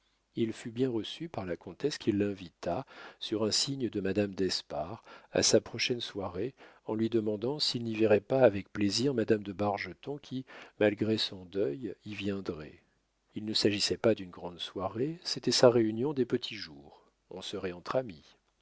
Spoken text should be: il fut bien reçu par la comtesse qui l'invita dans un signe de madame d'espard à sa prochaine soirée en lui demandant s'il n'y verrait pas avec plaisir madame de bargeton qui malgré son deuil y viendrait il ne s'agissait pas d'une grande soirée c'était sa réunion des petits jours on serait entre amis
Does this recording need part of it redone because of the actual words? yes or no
yes